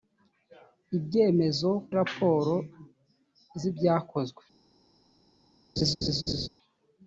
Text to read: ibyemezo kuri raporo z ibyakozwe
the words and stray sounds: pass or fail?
fail